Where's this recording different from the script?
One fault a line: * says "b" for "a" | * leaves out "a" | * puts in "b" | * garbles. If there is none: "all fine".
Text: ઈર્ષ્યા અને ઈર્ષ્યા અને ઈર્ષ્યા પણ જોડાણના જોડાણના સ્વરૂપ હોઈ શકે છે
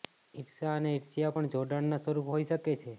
* leaves out "અને ઈર્ષ્યા"
* leaves out "જોડાણના"